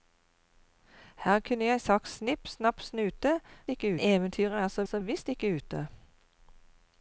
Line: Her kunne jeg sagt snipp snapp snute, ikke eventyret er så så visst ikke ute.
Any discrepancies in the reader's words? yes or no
no